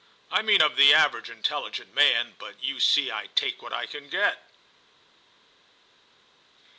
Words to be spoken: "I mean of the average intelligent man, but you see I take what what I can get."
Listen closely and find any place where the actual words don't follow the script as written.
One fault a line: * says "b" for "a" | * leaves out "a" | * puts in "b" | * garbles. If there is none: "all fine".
* leaves out "what"